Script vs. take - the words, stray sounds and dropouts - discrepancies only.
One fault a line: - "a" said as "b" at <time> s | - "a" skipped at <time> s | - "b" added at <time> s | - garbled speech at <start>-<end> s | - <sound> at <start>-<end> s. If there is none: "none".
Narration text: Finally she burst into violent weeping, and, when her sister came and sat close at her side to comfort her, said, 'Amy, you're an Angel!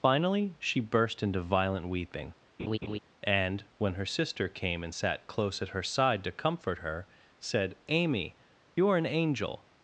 - laugh at 2.6-3.0 s